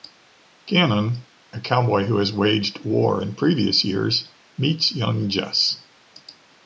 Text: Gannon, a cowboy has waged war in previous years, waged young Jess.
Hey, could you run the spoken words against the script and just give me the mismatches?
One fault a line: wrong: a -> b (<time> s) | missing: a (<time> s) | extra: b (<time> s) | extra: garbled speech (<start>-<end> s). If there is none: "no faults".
extra: who (2.0 s)
wrong: waged -> meets (4.6 s)